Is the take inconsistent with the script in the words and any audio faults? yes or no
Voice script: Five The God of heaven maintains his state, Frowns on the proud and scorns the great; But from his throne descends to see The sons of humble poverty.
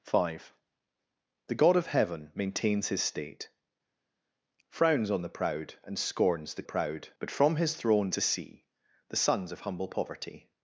yes